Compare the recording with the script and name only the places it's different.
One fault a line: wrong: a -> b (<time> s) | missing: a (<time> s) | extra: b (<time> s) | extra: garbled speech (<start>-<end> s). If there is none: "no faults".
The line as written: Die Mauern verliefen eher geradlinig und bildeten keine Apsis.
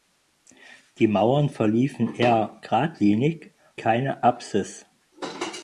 missing: und bildeten (3.5 s)